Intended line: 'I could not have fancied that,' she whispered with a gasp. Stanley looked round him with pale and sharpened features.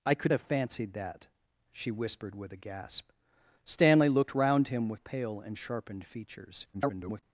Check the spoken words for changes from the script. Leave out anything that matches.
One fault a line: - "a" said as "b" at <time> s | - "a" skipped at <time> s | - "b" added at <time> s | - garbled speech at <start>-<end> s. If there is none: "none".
- "not" skipped at 0.3 s
- garbled speech at 6.7-7.2 s